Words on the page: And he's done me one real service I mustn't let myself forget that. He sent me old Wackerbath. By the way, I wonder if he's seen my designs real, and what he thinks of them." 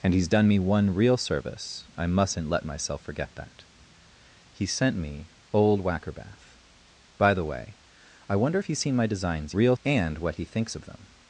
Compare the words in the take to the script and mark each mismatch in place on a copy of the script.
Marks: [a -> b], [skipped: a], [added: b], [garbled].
And he's done me one real service I mustn't let myself forget that. He sent me old Wackerbath. By the way, I wonder if he's seen my designs real, and what he thinks of them."